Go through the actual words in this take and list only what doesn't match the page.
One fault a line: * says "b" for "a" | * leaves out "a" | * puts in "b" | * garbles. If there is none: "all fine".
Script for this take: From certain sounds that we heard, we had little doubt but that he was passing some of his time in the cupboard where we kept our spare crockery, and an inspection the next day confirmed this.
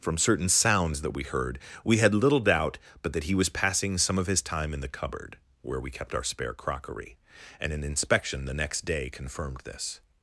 all fine